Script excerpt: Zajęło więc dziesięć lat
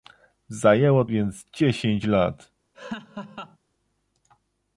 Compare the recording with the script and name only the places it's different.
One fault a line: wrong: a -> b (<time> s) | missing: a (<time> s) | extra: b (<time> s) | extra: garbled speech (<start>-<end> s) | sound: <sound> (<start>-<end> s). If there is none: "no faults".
sound: laugh (2.7-3.6 s)